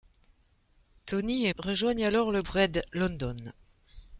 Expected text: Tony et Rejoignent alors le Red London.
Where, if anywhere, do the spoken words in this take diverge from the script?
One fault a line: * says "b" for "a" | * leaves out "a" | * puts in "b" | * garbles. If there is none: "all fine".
all fine